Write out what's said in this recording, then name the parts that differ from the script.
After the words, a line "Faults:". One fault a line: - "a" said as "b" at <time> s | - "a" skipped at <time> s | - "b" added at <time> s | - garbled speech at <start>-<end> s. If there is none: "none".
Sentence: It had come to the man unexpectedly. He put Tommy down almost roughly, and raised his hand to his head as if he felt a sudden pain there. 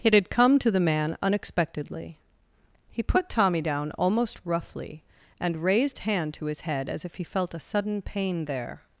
It had come to the man unexpectedly. He put Tommy down almost roughly, and raised hand to his head as if he felt a sudden pain there.
Faults:
- "his" skipped at 6.0 s